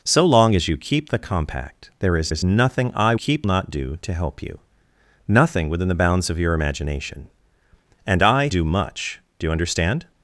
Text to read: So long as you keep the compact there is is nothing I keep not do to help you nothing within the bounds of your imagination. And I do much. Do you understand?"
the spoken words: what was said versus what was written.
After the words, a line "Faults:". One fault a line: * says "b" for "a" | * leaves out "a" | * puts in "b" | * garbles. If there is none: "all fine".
So long as you keep the compact there is is nothing I keep not do to help you nothing within the bounds of your imagination. And I do much. Do you understand?"
Faults:
all fine